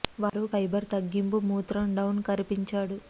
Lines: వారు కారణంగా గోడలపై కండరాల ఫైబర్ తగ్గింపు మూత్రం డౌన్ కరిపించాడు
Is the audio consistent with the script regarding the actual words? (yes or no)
no